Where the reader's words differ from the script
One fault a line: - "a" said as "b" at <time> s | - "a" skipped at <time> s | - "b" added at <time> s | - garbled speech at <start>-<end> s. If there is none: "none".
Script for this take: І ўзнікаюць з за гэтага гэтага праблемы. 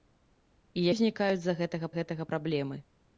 none